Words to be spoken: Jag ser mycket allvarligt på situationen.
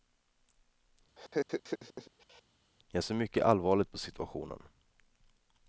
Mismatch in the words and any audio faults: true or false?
true